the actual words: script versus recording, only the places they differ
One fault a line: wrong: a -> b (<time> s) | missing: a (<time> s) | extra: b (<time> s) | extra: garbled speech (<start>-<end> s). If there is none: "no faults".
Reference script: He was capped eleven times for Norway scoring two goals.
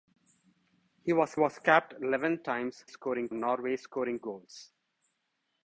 extra: was (1.4 s)
wrong: for -> scoring (2.8 s)
missing: two (4.2 s)